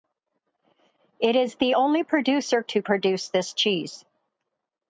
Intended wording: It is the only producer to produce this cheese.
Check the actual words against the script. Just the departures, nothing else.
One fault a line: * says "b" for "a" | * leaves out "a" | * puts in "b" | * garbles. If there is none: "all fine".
all fine